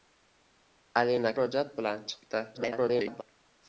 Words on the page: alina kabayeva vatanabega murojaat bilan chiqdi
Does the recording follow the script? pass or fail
fail